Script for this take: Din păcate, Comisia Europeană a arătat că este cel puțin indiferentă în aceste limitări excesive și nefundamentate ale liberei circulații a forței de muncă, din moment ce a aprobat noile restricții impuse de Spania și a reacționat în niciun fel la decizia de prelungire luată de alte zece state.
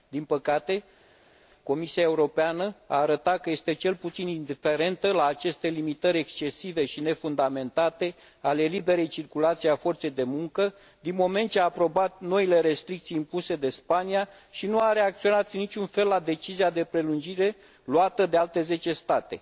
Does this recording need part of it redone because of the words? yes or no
yes